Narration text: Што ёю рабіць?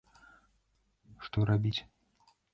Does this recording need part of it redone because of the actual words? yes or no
no